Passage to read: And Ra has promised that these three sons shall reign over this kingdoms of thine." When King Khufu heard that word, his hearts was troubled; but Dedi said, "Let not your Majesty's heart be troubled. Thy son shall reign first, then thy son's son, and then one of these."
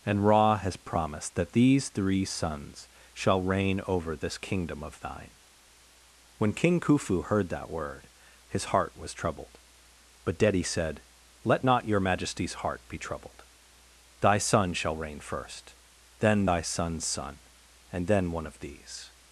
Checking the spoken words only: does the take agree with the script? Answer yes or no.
no